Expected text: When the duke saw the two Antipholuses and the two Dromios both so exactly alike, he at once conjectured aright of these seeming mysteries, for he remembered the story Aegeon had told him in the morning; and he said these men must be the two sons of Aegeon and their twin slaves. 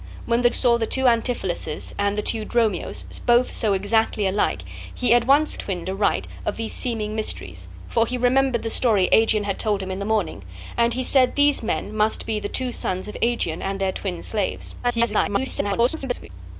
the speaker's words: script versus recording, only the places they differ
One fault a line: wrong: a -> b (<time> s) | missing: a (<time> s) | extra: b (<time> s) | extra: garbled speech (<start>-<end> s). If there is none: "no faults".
missing: duke (0.5 s)
wrong: conjectured -> twin (5.5 s)
extra: garbled speech (14.8-16.3 s)